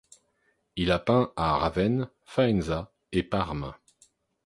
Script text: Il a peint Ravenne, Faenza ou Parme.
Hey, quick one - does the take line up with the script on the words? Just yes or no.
no